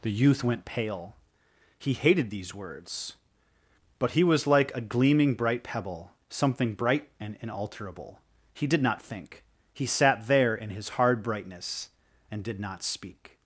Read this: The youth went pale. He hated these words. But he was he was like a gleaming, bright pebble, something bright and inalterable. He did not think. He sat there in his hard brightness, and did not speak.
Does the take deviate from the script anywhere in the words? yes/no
yes